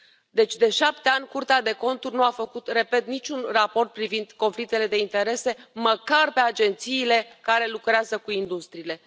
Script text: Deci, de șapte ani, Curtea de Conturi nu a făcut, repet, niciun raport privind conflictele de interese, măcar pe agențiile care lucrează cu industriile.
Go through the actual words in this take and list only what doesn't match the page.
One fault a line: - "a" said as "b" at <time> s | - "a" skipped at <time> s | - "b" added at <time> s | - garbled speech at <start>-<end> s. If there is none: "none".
none